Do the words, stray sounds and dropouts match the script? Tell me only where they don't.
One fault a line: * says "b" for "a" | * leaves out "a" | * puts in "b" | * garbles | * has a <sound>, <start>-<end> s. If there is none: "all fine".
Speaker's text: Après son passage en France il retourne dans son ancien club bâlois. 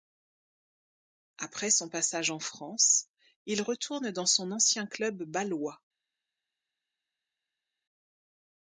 all fine